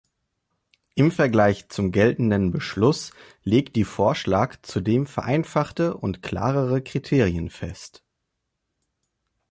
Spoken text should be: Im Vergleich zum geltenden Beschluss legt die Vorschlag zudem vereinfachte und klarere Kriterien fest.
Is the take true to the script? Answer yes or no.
yes